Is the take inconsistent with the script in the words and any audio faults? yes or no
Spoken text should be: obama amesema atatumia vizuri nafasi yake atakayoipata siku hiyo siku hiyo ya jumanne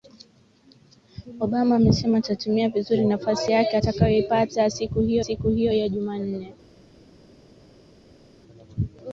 no